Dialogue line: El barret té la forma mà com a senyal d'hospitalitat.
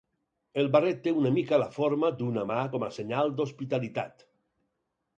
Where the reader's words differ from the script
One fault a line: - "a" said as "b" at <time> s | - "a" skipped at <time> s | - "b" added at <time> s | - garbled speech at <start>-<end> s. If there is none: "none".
- "una mica" added at 1.2 s
- "d'una" added at 2.2 s